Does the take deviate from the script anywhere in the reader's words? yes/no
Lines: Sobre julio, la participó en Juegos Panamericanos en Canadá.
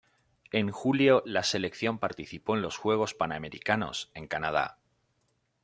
yes